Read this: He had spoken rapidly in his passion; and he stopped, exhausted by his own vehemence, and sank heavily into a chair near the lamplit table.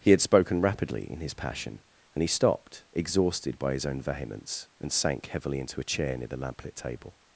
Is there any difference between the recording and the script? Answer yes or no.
no